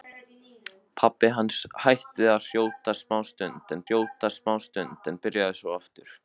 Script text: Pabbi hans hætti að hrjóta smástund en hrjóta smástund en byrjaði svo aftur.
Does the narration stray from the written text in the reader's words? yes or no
no